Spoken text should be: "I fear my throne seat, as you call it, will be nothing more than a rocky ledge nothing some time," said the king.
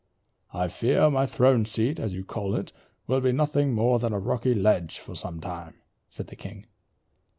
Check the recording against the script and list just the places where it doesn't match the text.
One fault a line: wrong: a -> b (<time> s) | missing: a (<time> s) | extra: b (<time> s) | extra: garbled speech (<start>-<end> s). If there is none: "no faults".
wrong: nothing -> for (5.0 s)